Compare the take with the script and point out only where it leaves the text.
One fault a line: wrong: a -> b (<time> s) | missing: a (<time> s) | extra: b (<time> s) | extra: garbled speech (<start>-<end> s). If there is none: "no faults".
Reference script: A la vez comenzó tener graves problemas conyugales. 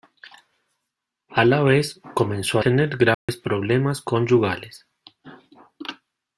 no faults